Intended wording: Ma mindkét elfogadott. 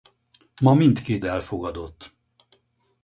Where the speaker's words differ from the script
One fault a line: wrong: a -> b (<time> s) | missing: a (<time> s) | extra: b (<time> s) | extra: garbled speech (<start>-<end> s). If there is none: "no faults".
no faults